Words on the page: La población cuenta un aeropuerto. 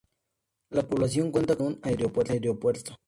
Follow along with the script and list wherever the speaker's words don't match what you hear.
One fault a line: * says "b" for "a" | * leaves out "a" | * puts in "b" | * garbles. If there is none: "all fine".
all fine